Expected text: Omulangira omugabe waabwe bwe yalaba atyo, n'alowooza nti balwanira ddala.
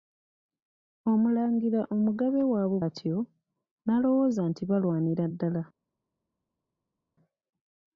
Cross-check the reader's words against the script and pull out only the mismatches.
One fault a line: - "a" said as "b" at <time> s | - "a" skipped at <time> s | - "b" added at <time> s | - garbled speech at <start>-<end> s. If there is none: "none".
- "bwe yalaba" skipped at 2.8 s